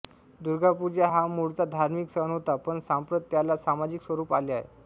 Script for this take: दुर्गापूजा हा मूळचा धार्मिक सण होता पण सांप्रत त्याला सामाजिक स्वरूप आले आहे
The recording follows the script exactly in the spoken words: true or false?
true